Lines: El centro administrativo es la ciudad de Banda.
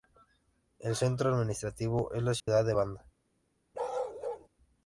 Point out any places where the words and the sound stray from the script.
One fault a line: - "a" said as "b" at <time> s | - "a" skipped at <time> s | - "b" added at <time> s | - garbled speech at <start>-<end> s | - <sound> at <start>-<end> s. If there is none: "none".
- dropout at 2.4-2.5 s
- bark at 3.7-4.5 s